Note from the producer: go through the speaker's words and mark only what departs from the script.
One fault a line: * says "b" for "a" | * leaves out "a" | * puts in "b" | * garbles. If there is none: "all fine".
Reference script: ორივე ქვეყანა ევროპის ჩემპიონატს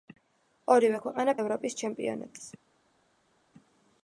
all fine